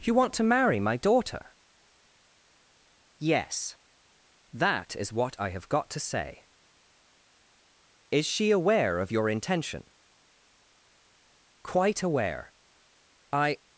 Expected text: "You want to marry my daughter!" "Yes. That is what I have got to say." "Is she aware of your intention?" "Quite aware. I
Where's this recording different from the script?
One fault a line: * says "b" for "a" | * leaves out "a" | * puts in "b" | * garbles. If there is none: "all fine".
all fine